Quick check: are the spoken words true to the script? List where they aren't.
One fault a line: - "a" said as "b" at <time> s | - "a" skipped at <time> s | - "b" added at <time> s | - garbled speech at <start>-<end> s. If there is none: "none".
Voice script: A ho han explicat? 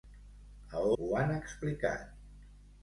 none